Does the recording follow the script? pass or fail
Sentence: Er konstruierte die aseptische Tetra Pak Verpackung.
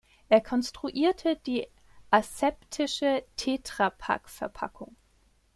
pass